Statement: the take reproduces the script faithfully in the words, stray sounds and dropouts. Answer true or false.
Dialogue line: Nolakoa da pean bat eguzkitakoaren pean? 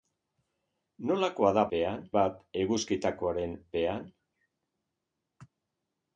true